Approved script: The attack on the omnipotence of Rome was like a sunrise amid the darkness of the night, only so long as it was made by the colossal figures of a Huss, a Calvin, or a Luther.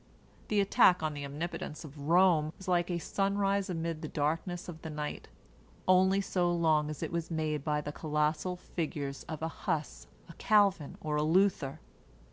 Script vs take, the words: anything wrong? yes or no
no